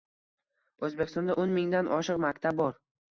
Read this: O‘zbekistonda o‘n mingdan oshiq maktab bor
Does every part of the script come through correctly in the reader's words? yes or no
yes